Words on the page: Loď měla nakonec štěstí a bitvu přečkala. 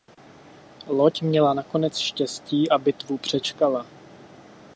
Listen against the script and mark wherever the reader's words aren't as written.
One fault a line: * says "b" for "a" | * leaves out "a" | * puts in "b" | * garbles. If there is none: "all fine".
all fine